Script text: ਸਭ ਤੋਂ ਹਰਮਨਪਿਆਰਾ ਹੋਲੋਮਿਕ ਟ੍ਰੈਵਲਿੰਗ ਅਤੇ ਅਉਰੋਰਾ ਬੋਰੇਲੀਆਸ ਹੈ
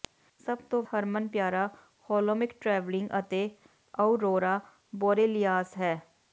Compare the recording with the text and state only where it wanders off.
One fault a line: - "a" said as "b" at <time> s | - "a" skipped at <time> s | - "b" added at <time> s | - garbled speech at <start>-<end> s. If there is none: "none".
none